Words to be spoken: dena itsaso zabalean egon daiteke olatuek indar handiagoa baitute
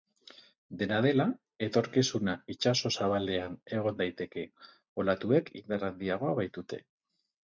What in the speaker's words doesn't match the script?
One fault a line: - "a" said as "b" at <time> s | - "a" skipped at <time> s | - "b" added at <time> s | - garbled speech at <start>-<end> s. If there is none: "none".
- "dela etorkizuna" added at 1.1 s